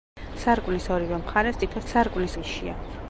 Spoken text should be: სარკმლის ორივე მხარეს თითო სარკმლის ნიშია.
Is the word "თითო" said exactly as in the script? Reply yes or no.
yes